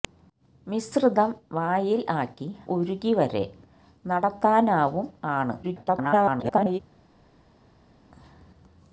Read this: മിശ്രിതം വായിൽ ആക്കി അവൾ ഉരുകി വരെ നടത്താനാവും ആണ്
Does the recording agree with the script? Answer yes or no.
no